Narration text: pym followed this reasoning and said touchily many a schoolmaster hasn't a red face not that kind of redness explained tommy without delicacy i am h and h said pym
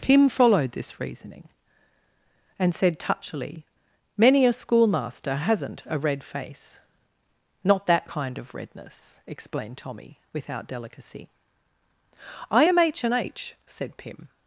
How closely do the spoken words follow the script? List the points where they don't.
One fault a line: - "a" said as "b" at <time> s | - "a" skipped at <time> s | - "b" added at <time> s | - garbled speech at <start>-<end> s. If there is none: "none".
none